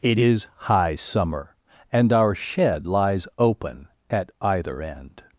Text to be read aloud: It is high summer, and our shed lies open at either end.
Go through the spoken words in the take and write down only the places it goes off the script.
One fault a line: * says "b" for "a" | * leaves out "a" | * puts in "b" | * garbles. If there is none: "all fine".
all fine